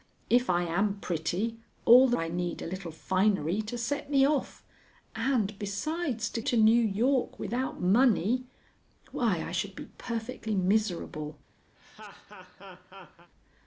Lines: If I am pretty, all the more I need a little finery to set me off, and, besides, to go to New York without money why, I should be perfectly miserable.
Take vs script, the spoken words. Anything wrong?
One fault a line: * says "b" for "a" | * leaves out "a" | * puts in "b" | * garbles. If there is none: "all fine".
* leaves out "more"
* leaves out "go"